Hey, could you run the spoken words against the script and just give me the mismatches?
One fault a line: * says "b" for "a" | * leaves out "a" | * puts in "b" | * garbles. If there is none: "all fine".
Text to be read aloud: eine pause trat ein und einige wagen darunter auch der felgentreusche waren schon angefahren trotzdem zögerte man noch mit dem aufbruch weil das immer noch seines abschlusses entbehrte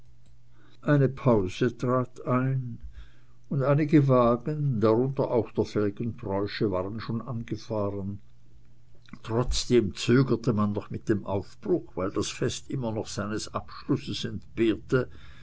* puts in "fest"